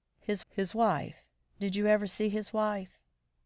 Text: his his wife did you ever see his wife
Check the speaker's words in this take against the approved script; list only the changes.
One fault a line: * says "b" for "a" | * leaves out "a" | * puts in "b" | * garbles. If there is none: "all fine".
all fine